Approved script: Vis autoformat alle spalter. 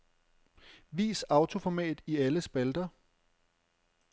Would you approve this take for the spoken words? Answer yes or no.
no